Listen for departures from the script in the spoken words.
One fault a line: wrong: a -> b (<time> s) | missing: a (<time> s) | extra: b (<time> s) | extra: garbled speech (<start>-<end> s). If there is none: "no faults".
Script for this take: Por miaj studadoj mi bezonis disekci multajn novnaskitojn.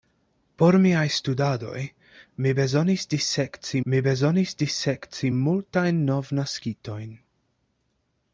extra: mi bezonis disekci (3.8 s)